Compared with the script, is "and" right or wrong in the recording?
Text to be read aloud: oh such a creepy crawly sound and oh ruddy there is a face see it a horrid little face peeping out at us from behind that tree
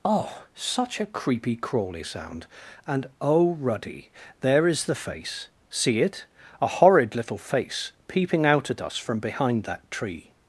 right